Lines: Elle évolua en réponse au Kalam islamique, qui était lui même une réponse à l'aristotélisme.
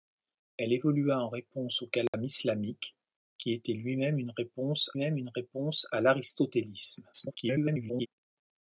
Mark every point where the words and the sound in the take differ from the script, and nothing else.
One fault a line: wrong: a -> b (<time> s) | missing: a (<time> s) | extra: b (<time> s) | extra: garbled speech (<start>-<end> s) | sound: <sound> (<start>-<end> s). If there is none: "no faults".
sound: dropout (2.1-2.1 s)
extra: même une réponse (5.0 s)
extra: garbled speech (7.1-8.1 s)